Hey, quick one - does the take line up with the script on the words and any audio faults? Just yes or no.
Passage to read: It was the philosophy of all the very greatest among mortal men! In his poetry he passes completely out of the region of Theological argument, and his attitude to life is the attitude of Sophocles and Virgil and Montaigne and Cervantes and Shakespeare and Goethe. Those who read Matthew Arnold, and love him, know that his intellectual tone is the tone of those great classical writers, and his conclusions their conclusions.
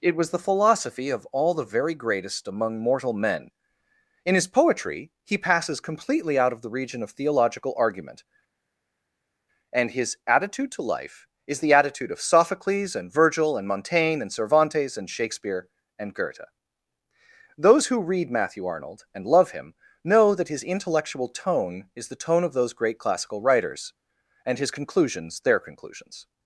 yes